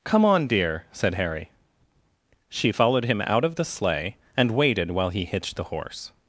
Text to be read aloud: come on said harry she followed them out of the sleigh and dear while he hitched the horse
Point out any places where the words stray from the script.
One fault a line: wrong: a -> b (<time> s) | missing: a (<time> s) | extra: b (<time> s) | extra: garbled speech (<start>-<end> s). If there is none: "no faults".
extra: dear (0.5 s)
wrong: them -> him (3.0 s)
wrong: dear -> waited (4.5 s)